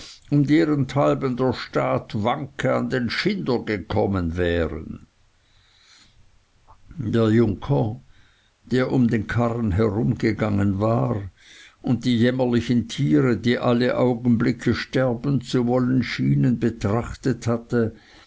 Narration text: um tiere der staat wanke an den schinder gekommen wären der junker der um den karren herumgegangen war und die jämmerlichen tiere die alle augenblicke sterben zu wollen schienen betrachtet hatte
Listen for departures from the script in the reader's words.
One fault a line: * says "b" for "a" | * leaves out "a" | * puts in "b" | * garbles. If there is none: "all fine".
* says "derenthalben" for "tiere"